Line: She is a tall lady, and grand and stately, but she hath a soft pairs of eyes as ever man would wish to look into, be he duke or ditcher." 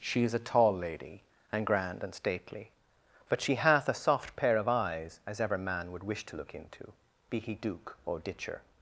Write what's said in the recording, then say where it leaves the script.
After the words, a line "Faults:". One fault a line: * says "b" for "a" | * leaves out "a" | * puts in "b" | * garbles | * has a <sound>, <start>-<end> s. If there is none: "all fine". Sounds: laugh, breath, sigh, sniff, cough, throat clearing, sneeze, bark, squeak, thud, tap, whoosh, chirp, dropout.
She is a tall lady, and grand and stately, but she hath a soft pair of eyes as ever man would wish to look into, be he duke or ditcher."
Faults:
* says "pair" for "pairs"